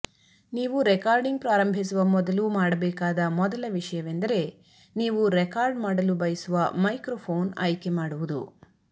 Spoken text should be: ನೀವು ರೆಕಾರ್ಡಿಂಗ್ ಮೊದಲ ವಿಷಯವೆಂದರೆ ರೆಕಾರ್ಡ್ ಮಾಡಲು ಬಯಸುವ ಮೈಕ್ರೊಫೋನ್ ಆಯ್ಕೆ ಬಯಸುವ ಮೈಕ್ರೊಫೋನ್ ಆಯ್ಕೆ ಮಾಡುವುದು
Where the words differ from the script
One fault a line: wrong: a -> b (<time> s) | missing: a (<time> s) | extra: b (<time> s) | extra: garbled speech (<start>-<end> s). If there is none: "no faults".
extra: ಪ್ರಾರಂಭಿಸುವ ಮೊದಲು ಮಾಡಬೇಕಾದ (1.4 s)
extra: ನೀವು (5.0 s)
missing: ಬಯಸುವ ಮೈಕ್ರೊಫೋನ್ ಆಯ್ಕೆ (7.9 s)